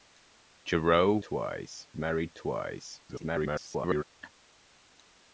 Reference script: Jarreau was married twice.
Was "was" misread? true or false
true